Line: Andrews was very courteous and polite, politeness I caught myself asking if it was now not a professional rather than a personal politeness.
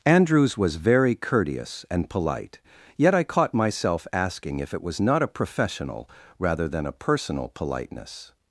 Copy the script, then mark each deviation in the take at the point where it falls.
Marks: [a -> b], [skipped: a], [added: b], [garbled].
Andrews was very courteous and polite, [politeness -> yet] I caught myself asking if it was [skipped: now] not a professional rather than a personal politeness.